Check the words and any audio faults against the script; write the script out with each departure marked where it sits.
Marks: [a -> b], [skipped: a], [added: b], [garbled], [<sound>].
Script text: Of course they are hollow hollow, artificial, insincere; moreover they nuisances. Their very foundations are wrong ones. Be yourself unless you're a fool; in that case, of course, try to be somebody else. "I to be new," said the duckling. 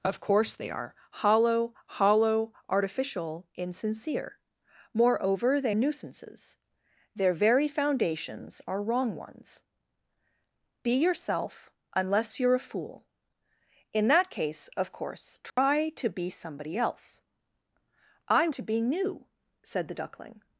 Of course they are hollow hollow, artificial, insincere; moreover they nuisances. Their very foundations are wrong ones. Be yourself unless you're a fool; in that case, of course, try [dropout] to be somebody else. "I to be new," said the duckling.